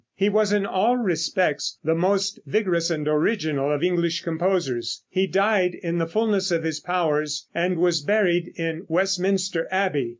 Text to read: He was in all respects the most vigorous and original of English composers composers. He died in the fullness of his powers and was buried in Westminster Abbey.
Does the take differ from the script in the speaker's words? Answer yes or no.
yes